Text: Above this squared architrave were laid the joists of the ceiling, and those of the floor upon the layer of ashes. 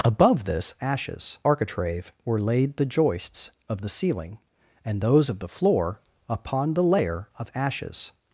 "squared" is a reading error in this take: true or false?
true